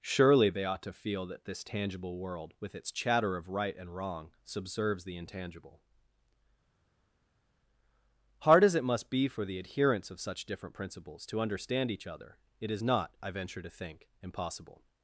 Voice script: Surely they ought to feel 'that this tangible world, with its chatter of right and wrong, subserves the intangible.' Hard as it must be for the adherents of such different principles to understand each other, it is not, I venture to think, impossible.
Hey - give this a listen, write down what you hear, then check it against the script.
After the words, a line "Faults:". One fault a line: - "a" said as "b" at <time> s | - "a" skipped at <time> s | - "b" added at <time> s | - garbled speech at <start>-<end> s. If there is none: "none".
Surely they ought to feel 'that this tangible world, with its chatter of right and wrong, subserves the intangible.' Hard as it must be for the adherents of such different principles to understand each other, it is not, I venture to think, impossible.
Faults:
none